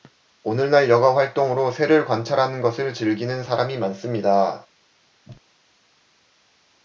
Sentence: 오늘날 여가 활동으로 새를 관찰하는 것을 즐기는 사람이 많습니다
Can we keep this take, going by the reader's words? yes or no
yes